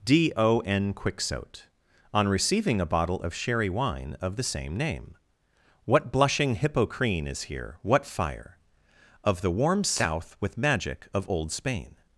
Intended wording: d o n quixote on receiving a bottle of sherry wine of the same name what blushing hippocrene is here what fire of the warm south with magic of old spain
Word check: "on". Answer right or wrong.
right